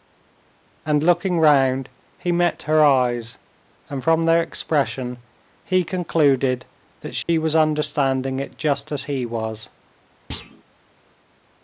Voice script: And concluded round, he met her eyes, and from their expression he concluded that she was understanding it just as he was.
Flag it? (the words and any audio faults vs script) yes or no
yes